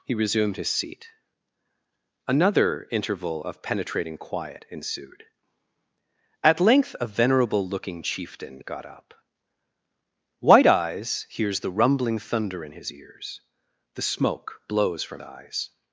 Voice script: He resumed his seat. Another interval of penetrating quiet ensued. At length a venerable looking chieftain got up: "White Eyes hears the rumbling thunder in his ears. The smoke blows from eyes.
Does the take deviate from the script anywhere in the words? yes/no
no